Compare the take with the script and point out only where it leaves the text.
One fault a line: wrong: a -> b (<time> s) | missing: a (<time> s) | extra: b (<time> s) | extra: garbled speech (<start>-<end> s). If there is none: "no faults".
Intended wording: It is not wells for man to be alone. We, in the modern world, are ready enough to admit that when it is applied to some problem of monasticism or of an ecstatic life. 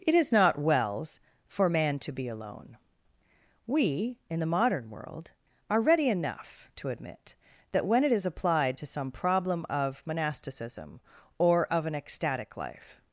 no faults